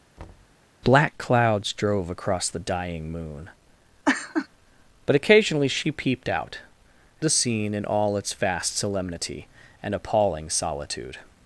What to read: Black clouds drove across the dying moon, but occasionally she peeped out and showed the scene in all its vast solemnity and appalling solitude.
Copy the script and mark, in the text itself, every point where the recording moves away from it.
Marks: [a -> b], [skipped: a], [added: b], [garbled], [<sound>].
[thud] Black clouds drove across the dying moon, [laugh] but occasionally she peeped out [skipped: and showed] the scene in all its vast solemnity and appalling solitude.